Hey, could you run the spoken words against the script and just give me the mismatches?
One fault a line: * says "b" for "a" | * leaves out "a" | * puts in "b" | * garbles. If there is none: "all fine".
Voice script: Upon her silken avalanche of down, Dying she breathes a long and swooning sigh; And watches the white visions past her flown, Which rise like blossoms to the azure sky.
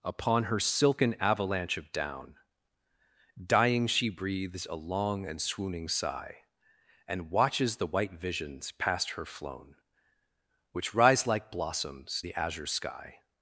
* leaves out "to"